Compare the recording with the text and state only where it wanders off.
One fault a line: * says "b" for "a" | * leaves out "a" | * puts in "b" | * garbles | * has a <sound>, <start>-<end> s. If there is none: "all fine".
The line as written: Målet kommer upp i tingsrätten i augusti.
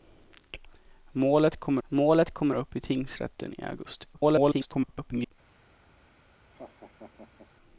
* puts in "målet kommer"
* garbles
* has a laugh, 6.5-7.5 s